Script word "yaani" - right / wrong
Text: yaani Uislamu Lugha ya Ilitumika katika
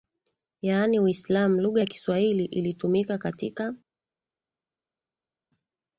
right